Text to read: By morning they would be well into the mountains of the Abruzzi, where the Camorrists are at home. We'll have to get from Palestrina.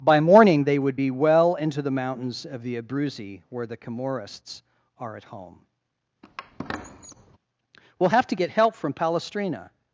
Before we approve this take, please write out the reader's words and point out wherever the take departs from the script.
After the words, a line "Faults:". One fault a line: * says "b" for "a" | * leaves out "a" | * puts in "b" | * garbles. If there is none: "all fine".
By morning they would be well into the mountains of the Abruzzi, where the Camorrists are at home. We'll have to get help from Palestrina.
Faults:
* puts in "help"